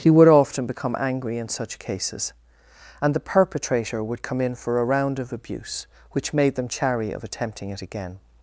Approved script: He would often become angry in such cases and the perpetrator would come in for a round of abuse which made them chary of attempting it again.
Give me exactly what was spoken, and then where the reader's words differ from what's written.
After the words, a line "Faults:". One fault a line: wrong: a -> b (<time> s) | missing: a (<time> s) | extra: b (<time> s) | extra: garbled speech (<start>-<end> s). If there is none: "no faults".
He would often become angry in such cases and the perpetrator would come in for a round of abuse which made them chary of attempting it again.
Faults:
no faults